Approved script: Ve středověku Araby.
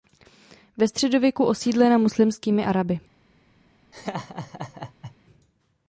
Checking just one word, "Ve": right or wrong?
right